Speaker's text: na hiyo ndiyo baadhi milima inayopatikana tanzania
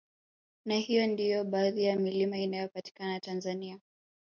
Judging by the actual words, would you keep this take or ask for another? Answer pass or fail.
fail